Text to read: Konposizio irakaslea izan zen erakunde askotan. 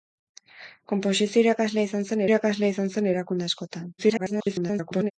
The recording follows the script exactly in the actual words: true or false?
false